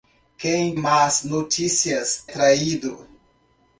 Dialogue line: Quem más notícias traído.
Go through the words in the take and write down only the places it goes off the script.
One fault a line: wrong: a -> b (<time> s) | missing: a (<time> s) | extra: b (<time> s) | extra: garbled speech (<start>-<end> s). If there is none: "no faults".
no faults